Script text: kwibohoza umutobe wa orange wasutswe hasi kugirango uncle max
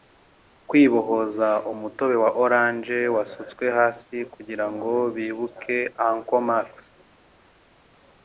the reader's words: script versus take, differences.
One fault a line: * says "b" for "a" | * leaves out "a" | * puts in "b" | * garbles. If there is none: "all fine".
* puts in "bibuke"